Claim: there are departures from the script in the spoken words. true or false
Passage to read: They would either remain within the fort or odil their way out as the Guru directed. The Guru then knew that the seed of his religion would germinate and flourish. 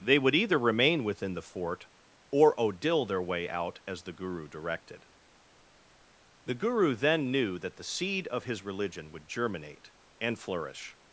false